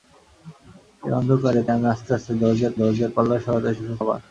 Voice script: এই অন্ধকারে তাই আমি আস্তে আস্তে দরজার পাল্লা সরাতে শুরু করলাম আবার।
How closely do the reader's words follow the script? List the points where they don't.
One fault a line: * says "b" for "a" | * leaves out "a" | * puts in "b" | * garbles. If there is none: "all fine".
* leaves out "তাই"
* puts in "দরজার"
* leaves out "করলাম"